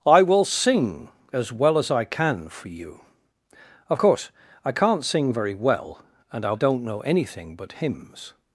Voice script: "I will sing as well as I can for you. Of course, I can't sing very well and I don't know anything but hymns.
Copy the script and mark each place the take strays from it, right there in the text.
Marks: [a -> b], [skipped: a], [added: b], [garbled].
"I will sing as well as I can for you. Of course, I can't sing very well and I don't know anything but hymns.